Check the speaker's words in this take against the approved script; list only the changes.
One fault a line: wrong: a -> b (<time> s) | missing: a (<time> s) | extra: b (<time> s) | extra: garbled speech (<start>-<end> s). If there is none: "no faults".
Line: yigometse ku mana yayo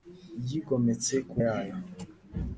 missing: mana (1.4 s)